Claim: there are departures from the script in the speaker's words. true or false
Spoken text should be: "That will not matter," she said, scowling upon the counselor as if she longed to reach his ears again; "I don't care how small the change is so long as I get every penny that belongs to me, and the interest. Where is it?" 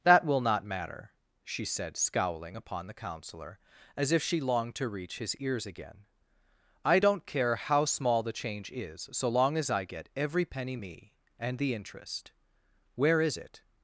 true